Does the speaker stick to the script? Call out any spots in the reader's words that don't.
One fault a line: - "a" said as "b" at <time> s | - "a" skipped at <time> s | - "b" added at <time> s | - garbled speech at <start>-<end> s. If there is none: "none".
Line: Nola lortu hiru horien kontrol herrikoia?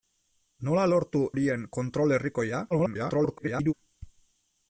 - "hiru" skipped at 1.2 s
- garbled speech at 2.7-3.7 s